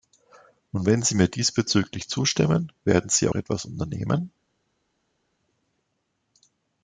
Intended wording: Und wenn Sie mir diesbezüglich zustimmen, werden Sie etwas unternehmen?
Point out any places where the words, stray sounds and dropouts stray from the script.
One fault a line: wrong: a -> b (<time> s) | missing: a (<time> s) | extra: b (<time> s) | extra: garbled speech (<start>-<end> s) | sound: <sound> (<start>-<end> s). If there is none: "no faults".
no faults